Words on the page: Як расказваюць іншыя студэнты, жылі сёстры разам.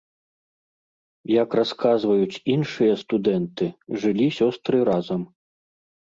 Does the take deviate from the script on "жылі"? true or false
false